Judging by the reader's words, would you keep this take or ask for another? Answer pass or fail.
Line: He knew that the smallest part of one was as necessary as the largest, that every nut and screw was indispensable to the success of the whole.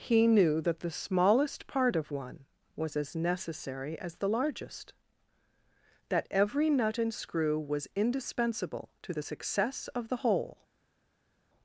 pass